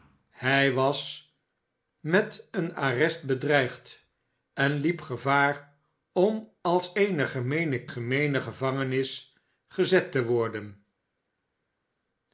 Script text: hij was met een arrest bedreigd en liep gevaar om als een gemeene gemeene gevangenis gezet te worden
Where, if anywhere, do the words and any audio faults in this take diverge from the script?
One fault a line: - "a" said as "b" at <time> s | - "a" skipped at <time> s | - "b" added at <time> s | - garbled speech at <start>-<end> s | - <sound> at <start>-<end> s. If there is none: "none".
none